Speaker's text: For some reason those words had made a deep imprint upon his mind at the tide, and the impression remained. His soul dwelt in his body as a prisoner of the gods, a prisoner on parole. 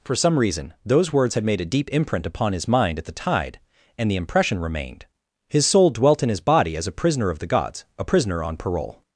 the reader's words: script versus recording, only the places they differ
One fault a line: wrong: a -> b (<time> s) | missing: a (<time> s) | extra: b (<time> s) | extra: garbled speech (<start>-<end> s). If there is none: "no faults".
no faults